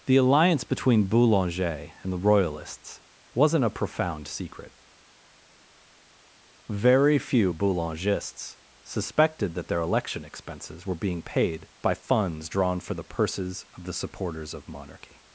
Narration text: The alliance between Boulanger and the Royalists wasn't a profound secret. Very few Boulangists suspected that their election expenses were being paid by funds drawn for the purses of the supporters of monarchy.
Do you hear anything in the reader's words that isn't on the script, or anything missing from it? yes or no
no